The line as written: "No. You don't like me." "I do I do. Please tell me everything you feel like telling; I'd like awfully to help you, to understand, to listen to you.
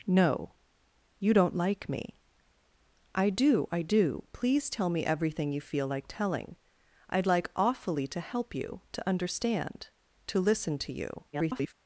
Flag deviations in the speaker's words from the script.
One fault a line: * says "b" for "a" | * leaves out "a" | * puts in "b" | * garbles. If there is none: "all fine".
* garbles